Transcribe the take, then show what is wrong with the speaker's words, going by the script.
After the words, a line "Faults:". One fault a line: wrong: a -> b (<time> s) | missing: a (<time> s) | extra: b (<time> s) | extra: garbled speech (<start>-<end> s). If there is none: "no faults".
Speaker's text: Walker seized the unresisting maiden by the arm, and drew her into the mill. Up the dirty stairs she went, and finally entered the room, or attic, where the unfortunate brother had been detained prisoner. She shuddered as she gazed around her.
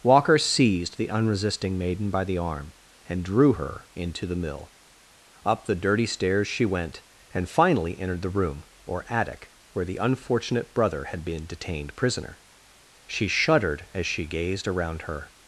Walker seized the unresisting maiden by the arm, and drew her into the mill. Up the dirty stairs she went, and finally entered the room, or attic, where the unfortunate brother had been detained prisoner. She shuddered as she gazed around her.
Faults:
no faults